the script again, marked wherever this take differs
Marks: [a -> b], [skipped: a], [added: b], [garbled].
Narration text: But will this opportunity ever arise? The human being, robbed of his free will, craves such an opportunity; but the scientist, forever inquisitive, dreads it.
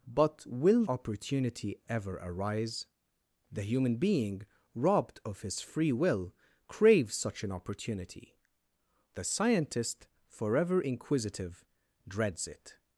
But will [skipped: this] opportunity ever arise? The human being, robbed of his free will, craves such an opportunity; [skipped: but] the scientist, forever inquisitive, dreads it.